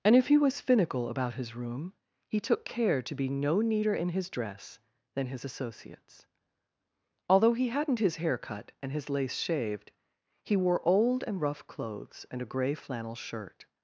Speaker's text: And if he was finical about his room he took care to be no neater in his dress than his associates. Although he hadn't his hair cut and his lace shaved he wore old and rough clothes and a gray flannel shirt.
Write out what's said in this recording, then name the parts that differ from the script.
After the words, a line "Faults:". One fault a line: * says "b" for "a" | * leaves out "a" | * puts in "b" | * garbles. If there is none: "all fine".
And if he was finical about his room he took care to be no neater in his dress than his associates. Although he hadn't his hair cut and his lace shaved he wore old and rough clothes and a gray flannel shirt.
Faults:
all fine